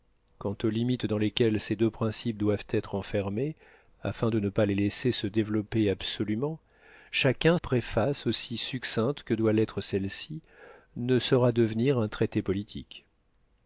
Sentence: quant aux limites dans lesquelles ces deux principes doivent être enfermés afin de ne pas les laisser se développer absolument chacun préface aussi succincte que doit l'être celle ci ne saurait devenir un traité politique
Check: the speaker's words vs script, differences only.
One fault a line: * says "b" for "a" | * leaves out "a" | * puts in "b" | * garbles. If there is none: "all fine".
all fine